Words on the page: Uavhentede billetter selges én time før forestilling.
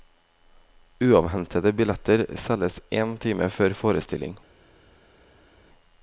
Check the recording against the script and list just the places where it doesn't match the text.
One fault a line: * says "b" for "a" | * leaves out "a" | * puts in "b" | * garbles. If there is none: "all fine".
all fine